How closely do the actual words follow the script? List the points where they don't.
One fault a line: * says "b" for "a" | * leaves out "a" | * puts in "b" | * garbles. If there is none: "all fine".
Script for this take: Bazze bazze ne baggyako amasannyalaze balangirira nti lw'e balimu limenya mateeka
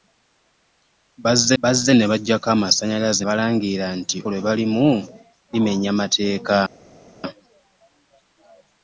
all fine